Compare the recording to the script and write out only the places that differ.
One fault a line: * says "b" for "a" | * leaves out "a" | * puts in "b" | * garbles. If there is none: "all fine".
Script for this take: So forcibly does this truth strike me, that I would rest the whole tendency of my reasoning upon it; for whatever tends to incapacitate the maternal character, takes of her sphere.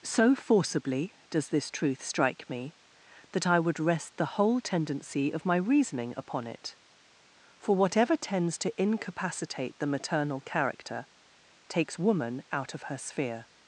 * puts in "woman out"